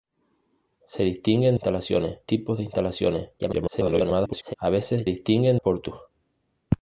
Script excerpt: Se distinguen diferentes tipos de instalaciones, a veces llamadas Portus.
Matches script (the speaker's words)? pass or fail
fail